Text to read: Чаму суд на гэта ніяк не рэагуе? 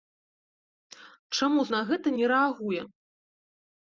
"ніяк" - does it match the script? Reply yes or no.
no